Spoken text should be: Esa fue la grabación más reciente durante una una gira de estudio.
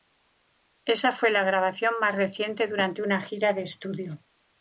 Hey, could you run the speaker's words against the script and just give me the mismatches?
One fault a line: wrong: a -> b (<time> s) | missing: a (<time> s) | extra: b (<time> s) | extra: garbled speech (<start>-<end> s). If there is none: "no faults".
missing: una (3.2 s)